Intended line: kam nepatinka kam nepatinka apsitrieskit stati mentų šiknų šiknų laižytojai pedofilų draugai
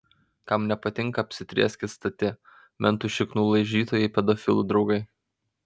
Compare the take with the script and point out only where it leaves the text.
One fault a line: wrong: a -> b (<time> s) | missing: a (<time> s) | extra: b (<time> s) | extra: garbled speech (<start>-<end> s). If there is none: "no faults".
missing: kam nepatinka (1.2 s)
missing: šiknų (3.5 s)